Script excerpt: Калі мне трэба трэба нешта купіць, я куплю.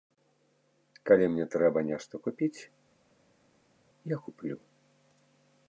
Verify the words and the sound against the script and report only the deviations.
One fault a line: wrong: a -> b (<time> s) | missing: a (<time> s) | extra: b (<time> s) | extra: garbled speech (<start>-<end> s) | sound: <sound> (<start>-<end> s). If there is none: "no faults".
missing: трэба (1.8 s)